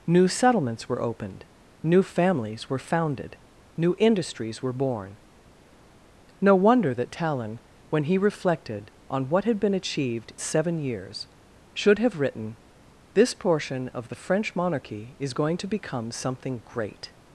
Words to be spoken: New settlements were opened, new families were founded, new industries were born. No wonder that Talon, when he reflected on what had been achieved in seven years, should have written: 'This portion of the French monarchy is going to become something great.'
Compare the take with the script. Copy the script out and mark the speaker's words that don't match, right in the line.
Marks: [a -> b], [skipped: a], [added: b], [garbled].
New settlements were opened, new families were founded, new industries were born. No wonder that Talon, when he reflected on what had been achieved [skipped: in] seven years, should have written: 'This portion of the French monarchy is going to become something great.'